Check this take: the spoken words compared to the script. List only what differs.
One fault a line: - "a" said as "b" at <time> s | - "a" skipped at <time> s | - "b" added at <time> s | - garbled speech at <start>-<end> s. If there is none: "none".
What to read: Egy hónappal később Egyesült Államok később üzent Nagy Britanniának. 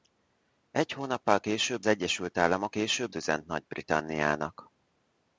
none